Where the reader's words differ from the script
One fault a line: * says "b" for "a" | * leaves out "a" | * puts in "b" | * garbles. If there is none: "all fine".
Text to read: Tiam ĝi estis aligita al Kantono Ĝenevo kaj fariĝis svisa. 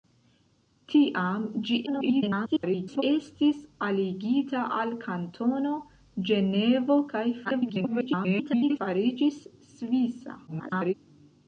* garbles
* garbles
* garbles